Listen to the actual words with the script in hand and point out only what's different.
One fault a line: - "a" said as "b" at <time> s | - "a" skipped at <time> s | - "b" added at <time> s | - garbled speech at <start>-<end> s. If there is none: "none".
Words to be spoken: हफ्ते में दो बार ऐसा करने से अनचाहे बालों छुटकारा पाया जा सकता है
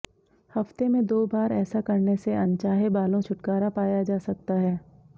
none